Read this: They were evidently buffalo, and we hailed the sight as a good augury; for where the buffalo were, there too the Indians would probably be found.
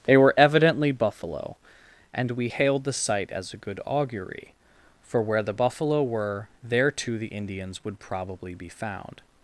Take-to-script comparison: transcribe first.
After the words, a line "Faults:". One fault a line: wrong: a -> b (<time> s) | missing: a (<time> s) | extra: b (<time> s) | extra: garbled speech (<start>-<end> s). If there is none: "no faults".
They were evidently buffalo, and we hailed the sight as a good augury; for where the buffalo were, there too the Indians would probably be found.
Faults:
no faults